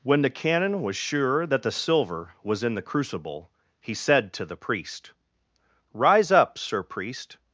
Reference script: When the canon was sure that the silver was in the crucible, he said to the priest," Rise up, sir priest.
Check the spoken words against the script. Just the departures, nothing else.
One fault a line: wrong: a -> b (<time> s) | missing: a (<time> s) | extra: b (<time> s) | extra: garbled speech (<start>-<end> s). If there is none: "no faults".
no faults